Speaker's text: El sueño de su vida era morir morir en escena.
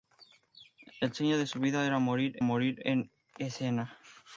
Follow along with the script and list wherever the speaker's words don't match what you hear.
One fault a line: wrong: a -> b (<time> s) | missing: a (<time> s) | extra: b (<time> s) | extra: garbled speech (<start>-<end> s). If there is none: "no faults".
no faults